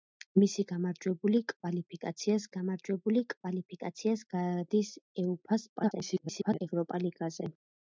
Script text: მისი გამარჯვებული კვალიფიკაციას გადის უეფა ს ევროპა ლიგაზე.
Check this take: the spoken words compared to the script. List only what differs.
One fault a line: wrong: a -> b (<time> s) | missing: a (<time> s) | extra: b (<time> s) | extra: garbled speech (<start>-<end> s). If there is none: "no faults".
extra: გამარჯვებული კვალიფიკაციას (2.5 s)
extra: garbled speech (5.8-6.6 s)